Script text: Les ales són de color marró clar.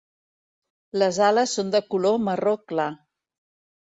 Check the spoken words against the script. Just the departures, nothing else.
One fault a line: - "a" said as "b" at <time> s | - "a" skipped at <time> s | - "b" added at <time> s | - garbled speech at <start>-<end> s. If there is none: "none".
none